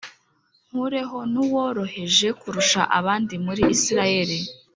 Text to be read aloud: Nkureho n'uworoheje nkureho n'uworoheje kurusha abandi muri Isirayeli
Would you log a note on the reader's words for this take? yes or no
yes